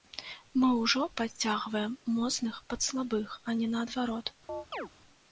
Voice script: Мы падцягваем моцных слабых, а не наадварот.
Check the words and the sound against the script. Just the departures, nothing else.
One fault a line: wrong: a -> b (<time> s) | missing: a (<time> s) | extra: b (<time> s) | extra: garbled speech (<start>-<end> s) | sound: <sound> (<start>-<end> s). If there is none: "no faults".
extra: ўжо (0.8 s)
extra: пад (2.7 s)
sound: chirp (4.5-4.9 s)